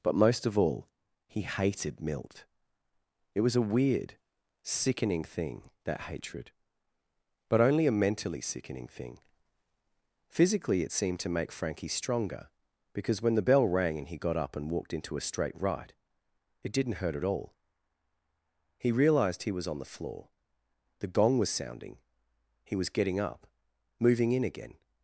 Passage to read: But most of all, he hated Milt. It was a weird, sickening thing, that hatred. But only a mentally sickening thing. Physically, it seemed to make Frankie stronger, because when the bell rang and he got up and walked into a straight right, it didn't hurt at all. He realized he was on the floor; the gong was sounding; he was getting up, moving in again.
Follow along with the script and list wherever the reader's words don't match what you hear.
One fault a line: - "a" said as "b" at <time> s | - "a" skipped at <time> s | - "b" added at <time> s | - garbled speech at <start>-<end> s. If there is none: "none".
none